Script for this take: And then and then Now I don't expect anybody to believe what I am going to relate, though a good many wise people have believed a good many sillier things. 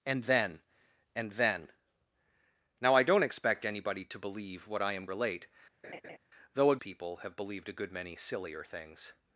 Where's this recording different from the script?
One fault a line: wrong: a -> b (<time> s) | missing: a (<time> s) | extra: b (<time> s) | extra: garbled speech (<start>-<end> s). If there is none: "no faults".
missing: going to (5.0 s)
missing: good many wise (6.8 s)